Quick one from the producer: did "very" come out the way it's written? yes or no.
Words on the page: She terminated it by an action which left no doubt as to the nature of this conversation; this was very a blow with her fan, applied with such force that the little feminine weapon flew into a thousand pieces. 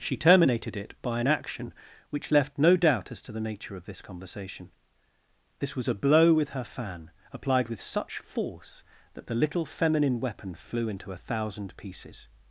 no